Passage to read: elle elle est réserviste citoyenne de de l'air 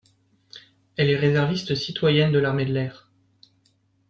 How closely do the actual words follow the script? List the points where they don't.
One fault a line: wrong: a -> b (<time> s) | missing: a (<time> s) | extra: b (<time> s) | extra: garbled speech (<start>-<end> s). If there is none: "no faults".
missing: elle (1.1 s)
extra: l'armée (2.4 s)